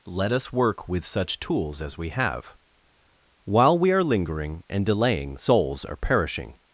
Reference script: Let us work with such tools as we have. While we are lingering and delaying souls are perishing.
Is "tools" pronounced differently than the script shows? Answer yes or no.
no